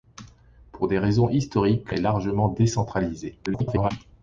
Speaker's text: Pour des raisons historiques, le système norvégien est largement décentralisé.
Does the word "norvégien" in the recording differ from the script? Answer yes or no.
yes